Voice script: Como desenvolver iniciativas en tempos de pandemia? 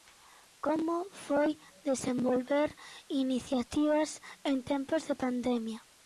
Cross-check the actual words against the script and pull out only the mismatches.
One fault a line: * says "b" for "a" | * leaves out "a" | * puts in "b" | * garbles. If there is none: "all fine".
* puts in "foi"